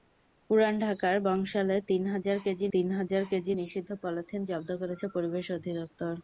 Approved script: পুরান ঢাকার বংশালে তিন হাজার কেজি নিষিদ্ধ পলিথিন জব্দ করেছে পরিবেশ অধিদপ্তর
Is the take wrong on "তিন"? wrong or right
right